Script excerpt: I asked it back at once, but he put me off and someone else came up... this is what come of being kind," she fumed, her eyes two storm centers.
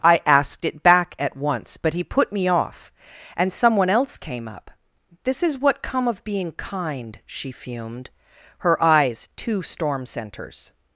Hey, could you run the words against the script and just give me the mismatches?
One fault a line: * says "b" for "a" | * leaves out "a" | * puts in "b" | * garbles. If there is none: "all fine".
all fine